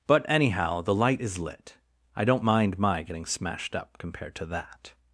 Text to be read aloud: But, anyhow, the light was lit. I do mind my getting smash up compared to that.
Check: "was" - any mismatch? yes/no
yes